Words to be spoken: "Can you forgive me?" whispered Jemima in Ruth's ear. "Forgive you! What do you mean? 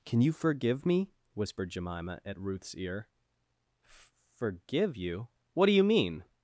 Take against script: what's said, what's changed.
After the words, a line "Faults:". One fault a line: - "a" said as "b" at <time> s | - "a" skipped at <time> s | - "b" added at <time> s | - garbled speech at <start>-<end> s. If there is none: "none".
"Can you forgive me?" whispered Jemima at Ruth's ear. "Forgive you! What do you mean?
Faults:
- "in" said as "at" at 2.2 s